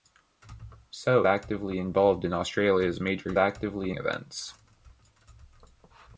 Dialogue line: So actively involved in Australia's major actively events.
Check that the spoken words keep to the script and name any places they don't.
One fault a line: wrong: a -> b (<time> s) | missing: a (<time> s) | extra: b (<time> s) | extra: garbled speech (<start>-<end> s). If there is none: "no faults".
no faults